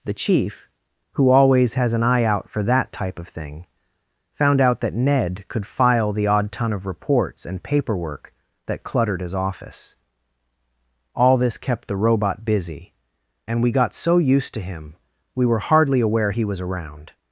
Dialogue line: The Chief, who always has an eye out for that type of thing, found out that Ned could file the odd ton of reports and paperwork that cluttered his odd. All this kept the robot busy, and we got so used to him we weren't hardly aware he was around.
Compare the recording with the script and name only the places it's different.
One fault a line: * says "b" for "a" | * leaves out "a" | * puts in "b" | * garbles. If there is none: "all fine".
* says "office" for "odd"
* says "were" for "weren't"